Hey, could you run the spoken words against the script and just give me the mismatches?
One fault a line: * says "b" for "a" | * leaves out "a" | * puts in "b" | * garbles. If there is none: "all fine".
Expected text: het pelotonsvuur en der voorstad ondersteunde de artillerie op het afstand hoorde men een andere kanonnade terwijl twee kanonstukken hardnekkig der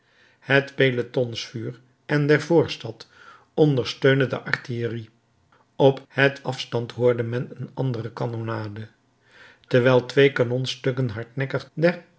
all fine